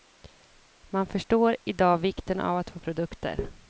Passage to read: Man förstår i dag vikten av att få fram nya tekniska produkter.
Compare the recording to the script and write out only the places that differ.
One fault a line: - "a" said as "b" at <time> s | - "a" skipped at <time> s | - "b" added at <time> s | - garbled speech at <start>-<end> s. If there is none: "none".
- "fram nya tekniska" skipped at 2.8 s